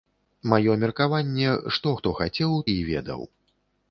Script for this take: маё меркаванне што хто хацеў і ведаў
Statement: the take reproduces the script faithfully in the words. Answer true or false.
true